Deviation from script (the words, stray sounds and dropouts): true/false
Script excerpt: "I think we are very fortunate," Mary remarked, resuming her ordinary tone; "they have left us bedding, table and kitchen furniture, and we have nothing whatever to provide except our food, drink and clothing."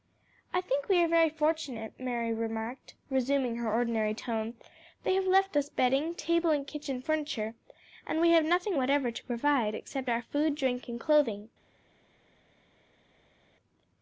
false